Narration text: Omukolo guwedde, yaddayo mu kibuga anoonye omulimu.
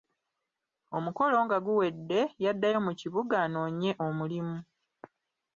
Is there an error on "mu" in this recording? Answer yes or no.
no